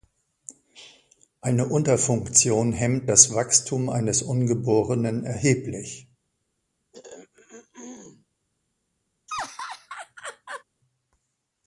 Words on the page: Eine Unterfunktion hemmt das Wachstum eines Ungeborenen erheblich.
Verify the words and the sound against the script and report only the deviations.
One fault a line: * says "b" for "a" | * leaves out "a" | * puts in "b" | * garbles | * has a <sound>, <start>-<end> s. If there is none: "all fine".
* has a throat clearing, 6.9-8.3 s
* has a laugh, 9.3-10.6 s